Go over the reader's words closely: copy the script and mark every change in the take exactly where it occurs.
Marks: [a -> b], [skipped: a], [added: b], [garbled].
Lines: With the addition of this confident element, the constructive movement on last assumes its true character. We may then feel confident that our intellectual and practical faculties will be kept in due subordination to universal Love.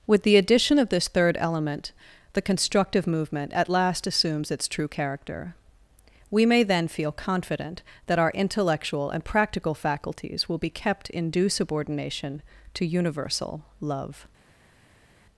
With the addition of this [confident -> third] element, the constructive movement [on -> at] last assumes its true character. We may then feel confident that our intellectual and practical faculties will be kept in due subordination to universal Love.